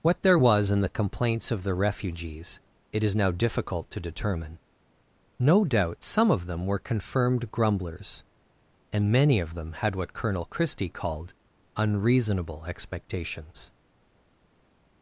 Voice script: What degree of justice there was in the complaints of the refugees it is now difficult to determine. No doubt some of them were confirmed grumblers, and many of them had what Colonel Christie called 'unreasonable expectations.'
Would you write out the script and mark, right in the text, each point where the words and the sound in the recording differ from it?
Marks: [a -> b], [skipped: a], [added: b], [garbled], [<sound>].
What [skipped: degree of justice] there was in the complaints of the refugees it is now difficult to determine. No doubt some of them were confirmed grumblers, and many of them had what Colonel Christie called 'unreasonable expectations.'